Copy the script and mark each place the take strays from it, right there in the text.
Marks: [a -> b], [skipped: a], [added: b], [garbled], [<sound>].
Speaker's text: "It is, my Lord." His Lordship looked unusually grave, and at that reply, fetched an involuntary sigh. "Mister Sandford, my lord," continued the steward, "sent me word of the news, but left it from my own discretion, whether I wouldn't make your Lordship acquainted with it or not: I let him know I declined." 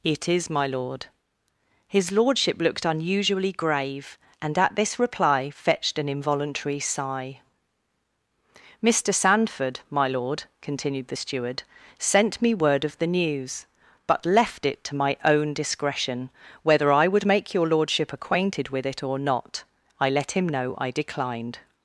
"It is, my Lord." His Lordship looked unusually grave, and at [that -> this] reply, fetched an involuntary sigh. "Mister Sandford, my lord," continued the steward, "sent me word of the news, but left it [from -> to] my own discretion, whether I [wouldn't -> would] make your Lordship acquainted with it or not: I let him know I declined."